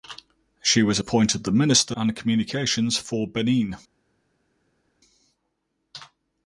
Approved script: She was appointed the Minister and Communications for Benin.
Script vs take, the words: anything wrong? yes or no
no